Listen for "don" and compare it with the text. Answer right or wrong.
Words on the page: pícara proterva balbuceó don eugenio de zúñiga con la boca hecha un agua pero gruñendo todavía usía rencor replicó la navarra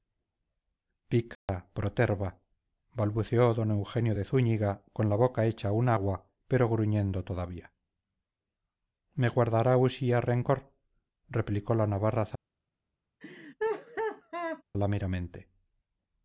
right